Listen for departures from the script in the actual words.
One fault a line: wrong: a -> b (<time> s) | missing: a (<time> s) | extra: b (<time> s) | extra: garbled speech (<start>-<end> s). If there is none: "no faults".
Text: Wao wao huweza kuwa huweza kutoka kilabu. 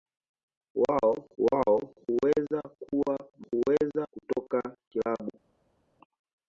no faults